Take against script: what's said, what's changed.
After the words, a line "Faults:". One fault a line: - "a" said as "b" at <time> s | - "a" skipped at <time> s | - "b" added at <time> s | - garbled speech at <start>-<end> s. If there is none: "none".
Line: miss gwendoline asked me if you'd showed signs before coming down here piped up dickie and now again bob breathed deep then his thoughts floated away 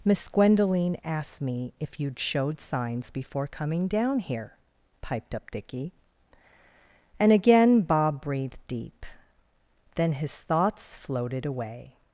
miss gwendoline asked me if you'd showed signs before coming down here piped up dickie and again bob breathed deep then his thoughts floated away
Faults:
- "now" skipped at 7.3 s